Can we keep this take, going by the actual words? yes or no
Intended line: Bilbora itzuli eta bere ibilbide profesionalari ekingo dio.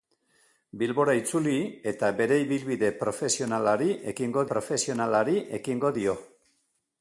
no